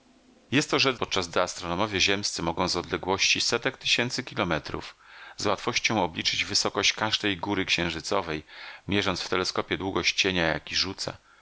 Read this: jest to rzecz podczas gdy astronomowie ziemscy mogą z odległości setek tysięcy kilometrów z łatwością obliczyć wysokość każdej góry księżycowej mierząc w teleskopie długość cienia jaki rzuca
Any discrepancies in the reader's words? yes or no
no